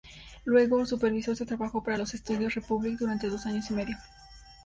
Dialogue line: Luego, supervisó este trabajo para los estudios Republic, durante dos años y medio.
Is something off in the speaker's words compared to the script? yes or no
no